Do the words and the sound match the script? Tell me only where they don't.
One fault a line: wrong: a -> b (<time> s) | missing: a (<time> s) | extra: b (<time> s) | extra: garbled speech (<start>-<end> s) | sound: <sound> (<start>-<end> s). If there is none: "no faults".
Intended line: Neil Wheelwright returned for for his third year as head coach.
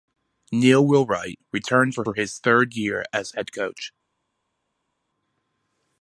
no faults